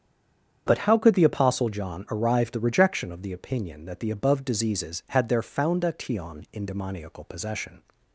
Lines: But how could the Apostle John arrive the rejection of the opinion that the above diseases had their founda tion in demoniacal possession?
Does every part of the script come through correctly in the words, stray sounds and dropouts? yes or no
yes